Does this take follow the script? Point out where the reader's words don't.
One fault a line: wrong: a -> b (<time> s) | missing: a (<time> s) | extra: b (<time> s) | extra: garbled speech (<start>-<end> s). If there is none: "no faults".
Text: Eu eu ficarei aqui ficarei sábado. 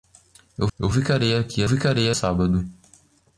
no faults